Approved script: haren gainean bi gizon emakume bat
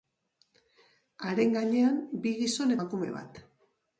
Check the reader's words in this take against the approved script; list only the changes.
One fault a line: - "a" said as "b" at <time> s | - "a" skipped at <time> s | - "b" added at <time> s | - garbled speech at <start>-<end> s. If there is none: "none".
none